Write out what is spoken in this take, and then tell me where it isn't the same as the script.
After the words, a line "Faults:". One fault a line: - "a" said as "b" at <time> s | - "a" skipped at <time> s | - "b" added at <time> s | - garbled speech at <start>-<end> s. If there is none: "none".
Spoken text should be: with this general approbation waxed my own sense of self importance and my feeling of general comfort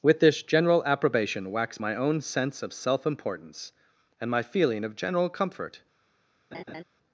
with this general approbation wax my own sense of self importance and my feeling of general comfort
Faults:
- "waxed" said as "wax" at 1.5 s